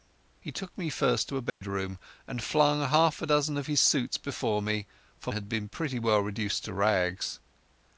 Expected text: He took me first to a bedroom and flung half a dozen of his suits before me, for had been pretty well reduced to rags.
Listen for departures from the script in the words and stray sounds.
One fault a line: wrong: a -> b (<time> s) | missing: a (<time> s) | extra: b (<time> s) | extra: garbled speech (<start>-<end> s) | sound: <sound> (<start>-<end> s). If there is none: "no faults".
sound: dropout (1.5-1.6 s)